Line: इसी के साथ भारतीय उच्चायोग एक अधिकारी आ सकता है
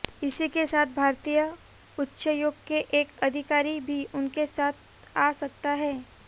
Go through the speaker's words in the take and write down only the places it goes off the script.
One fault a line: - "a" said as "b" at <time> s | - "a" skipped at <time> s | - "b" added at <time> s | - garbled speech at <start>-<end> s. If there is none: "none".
- "के" added at 2.7 s
- "भी उनके साथ" added at 3.8 s